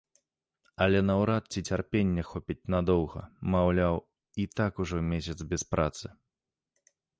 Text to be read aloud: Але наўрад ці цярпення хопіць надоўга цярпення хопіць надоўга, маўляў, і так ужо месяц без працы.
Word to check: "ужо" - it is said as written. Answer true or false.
true